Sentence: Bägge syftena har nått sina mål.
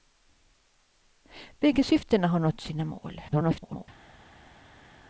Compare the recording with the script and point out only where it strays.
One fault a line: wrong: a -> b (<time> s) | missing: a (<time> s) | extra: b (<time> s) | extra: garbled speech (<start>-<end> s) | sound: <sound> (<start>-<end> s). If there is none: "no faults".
extra: garbled speech (3.3-3.9 s)